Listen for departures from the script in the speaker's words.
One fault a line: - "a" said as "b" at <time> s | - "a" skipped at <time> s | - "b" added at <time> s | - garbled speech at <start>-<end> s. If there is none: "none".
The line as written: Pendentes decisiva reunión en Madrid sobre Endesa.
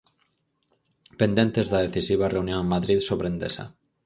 - "da" added at 1.7 s